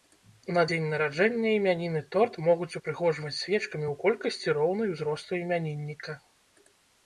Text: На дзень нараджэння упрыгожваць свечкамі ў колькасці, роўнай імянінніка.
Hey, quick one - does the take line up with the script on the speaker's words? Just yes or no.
no